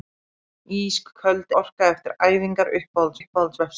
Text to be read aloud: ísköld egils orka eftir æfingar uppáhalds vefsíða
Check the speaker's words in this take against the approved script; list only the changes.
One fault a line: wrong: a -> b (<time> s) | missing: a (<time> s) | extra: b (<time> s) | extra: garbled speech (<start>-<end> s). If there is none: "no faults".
missing: egils (1.5 s)
extra: uppáhalds (3.2 s)